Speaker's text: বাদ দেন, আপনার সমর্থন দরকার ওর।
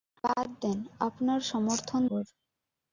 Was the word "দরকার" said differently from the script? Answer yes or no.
yes